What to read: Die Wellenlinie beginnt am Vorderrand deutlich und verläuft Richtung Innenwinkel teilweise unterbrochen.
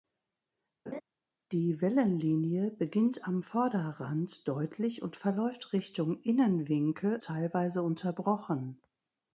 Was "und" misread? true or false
false